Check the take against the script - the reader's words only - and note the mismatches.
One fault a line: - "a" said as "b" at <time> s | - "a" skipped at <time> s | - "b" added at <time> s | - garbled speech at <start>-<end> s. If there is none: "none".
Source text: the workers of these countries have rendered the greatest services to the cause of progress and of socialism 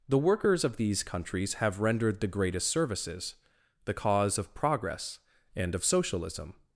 - "to" skipped at 3.4 s